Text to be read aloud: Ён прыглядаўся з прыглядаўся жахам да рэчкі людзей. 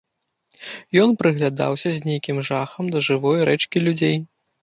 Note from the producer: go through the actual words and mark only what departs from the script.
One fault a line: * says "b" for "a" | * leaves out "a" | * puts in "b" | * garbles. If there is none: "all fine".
* says "нейкім" for "прыглядаўся"
* puts in "жывой"